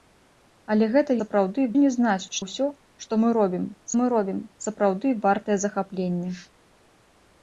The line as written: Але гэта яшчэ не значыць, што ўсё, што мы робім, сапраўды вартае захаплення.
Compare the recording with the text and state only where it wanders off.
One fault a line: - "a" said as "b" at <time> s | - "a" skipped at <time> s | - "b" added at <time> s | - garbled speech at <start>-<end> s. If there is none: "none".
- "яшчэ" said as "сапраўды" at 1.2 s
- "ўсё" added at 2.4 s
- "ўсё што" said as "мы робім" at 3.3 s